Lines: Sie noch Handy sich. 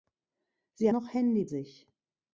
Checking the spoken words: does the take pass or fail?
pass